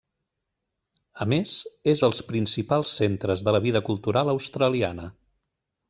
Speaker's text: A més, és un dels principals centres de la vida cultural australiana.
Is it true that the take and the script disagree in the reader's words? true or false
true